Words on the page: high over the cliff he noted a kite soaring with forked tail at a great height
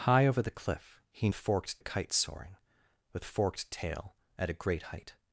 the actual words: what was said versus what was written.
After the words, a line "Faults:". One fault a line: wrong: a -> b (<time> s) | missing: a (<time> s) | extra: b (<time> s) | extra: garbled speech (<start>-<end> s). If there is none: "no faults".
high over the cliff he forked a kite soaring with forked tail at a great height
Faults:
wrong: noted -> forked (1.3 s)